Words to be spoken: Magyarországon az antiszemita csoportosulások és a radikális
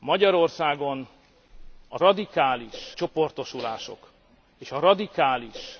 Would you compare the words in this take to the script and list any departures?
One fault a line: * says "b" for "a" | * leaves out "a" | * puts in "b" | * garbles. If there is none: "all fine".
* says "radikális" for "antiszemita"